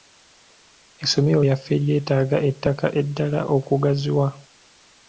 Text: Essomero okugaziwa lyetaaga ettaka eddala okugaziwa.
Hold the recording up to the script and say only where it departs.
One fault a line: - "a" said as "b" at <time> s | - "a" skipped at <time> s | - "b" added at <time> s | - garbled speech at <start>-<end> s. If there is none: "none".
- "okugaziwa" said as "lyaffe" at 1.4 s